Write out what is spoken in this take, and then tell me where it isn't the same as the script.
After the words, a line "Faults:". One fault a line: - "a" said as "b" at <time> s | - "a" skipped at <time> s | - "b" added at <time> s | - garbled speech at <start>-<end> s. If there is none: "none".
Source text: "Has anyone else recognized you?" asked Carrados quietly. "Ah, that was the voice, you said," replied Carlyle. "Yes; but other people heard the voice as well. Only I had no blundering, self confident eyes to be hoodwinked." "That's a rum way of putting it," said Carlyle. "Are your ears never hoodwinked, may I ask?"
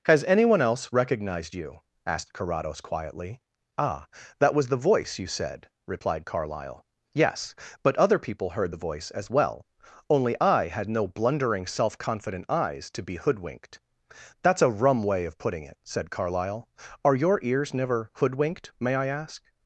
"Has anyone else recognized you?" asked Carrados quietly. "Ah, that was the voice, you said," replied Carlyle. "Yes; but other people heard the voice as well. Only I had no blundering, self confident eyes to be hoodwinked." "That's a rum way of putting it," said Carlyle. "Are your ears never hoodwinked, may I ask?"
Faults:
none